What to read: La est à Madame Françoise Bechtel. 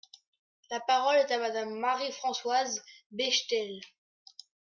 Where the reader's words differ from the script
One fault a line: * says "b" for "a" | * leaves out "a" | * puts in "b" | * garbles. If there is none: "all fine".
* puts in "parole"
* puts in "Marie"